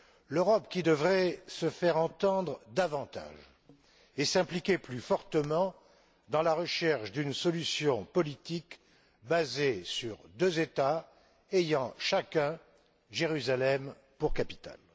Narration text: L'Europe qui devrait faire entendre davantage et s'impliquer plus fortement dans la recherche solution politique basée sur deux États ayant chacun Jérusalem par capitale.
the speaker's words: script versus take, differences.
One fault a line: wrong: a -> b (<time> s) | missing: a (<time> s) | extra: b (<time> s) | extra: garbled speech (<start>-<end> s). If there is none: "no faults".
extra: se (1.5 s)
extra: d'une (7.1 s)
wrong: par -> pour (14.2 s)